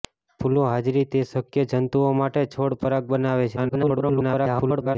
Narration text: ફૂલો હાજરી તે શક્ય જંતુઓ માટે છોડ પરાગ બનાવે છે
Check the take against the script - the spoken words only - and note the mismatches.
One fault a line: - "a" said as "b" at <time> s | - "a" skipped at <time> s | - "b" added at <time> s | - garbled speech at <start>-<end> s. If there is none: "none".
- garbled speech at 3.6-5.0 s